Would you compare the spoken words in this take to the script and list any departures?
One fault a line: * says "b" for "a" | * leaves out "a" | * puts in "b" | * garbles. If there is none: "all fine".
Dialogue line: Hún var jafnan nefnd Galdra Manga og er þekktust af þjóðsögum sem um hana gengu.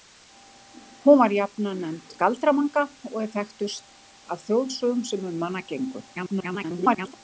* garbles